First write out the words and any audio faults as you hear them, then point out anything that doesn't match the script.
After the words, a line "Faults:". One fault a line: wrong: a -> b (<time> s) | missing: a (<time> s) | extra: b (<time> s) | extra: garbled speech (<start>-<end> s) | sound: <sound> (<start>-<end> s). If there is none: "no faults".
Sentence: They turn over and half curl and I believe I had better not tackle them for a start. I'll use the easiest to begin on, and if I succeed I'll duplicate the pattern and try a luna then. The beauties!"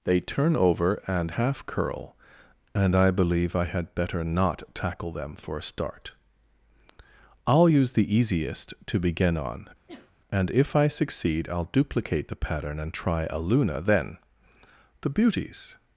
They turn over and half curl and I believe I had better not tackle them for a start. I'll use the easiest to begin on, and if I succeed I'll duplicate the pattern and try a luna then. The beauties!"
Faults:
sound: sneeze (9.9-10.1 s)